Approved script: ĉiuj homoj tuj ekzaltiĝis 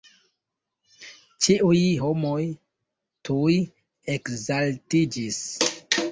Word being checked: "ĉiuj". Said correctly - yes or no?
yes